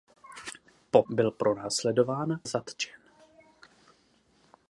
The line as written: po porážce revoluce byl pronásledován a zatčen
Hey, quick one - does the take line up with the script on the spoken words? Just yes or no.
no